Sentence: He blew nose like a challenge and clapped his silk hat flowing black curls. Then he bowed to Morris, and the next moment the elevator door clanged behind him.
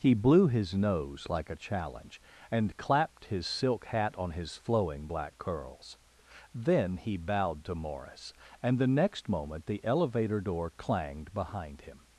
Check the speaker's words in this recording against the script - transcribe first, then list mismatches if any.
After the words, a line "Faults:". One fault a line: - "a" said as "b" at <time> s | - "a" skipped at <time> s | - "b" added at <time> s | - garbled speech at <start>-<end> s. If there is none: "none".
He blew his nose like a challenge and clapped his silk hat on his flowing black curls. Then he bowed to Morris, and the next moment the elevator door clanged behind him.
Faults:
- "his" added at 0.5 s
- "on his" added at 4.2 s